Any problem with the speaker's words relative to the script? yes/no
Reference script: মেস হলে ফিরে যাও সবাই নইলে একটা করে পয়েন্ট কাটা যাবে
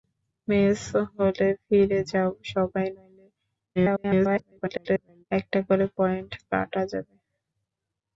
yes